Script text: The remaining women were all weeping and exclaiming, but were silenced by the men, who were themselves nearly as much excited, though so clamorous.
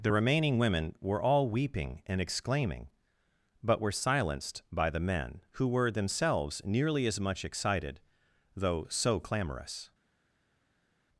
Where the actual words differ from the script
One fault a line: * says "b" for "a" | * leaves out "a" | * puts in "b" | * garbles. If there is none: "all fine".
all fine